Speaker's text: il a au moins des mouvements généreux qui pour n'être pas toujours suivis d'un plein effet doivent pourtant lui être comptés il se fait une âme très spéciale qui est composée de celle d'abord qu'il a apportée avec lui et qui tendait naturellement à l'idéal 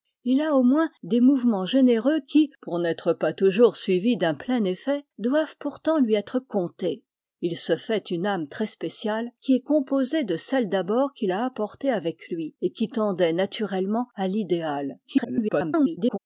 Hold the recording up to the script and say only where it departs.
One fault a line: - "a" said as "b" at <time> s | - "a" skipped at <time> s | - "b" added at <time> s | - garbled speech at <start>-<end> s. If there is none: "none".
- garbled speech at 15.0-16.2 s